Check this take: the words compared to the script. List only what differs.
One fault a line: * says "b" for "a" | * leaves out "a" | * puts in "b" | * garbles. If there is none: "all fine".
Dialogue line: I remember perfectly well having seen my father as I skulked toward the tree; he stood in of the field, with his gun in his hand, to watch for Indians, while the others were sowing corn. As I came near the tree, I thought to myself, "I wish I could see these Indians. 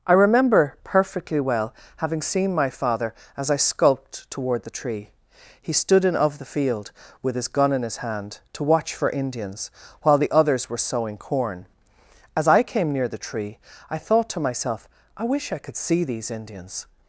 all fine